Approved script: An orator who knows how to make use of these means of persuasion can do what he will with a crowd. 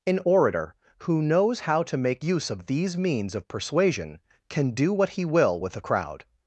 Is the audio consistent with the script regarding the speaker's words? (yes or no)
yes